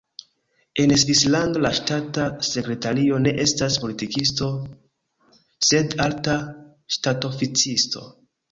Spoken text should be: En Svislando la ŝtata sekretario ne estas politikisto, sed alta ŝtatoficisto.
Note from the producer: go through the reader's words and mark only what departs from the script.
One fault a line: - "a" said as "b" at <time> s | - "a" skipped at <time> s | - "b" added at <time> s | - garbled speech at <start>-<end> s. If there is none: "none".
none